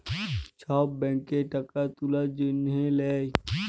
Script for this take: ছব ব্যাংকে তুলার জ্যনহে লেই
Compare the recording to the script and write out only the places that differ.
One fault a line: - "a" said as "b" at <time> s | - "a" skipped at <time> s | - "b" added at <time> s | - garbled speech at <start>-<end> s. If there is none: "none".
- "টাকা" added at 1.5 s